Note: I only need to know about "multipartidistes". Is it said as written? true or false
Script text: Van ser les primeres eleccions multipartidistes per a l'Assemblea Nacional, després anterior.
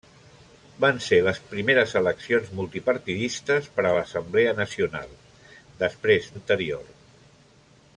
true